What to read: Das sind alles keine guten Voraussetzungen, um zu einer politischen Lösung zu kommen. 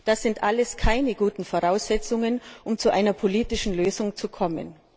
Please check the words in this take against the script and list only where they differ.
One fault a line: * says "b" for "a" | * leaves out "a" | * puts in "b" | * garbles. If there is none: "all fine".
all fine